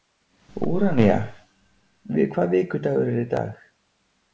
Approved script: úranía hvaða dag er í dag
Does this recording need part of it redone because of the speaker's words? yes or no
yes